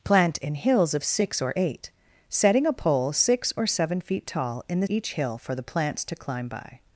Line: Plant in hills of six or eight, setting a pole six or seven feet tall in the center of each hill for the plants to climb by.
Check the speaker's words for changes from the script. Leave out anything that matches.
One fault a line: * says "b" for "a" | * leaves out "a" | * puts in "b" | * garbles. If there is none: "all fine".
* leaves out "center of"